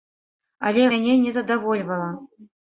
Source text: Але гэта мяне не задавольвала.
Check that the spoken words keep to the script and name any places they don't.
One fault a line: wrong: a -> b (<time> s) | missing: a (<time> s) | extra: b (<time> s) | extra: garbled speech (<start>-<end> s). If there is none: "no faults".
missing: гэта (0.8 s)